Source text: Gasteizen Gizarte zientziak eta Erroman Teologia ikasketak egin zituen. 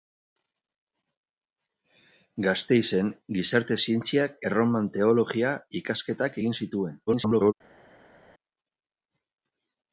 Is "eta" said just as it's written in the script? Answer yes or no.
no